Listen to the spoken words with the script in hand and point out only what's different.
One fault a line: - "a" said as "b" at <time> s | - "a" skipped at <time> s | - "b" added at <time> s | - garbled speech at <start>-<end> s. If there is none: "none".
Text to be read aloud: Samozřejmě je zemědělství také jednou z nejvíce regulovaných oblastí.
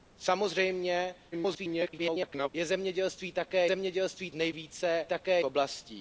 - garbled speech at 1.3-2.5 s
- "jednou" said as "zemědělství" at 3.6 s
- "regulovaných" said as "také" at 5.1 s